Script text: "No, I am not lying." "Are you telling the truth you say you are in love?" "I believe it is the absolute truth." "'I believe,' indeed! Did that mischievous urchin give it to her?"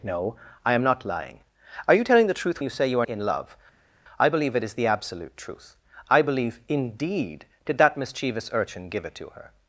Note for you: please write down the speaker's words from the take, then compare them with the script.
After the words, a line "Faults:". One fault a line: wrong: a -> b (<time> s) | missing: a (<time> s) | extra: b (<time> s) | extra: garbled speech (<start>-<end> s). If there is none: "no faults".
"No, I am not lying." "Are you telling the truth you say you are in love?" "I believe it is the absolute truth." "'I believe,' indeed! Did that mischievous urchin give it to her?"
Faults:
no faults